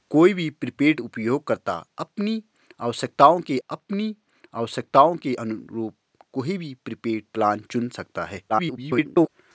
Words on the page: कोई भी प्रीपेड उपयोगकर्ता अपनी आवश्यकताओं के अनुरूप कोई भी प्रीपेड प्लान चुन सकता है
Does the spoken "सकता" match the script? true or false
true